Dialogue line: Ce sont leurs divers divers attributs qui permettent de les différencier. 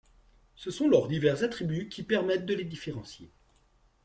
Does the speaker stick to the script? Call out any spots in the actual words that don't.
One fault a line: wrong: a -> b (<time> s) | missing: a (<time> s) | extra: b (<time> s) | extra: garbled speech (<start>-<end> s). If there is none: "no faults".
missing: divers (1.4 s)